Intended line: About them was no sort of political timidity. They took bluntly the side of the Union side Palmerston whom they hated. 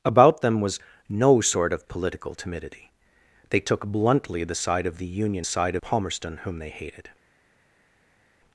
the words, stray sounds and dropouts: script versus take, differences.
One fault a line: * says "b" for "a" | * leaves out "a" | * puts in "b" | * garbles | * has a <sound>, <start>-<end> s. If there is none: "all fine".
all fine